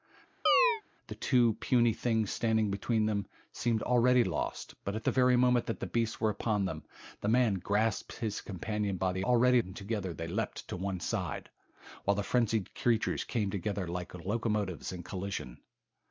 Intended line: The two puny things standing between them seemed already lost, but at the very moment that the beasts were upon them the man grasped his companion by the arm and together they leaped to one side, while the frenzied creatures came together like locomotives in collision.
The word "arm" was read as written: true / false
false